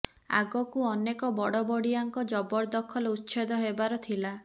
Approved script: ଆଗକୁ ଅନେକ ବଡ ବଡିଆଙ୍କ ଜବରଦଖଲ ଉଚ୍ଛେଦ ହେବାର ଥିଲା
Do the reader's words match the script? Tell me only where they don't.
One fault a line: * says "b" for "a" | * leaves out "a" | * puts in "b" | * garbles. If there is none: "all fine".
all fine